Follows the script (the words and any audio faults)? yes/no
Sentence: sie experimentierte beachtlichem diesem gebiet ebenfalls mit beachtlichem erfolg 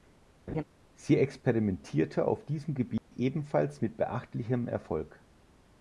no